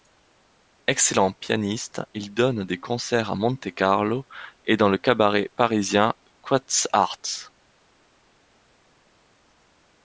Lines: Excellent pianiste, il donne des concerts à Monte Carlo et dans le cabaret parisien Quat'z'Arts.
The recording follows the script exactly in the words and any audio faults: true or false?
true